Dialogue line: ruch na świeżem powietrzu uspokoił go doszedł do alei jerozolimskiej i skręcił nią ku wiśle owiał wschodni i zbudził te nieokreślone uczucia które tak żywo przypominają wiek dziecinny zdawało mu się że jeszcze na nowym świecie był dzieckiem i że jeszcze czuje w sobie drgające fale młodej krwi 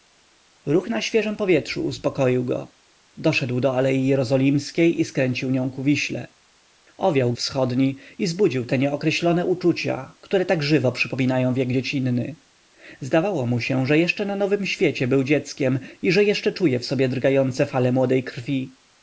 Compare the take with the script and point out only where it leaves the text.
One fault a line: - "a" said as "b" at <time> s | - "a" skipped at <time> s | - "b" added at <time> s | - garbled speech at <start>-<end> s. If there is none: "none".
none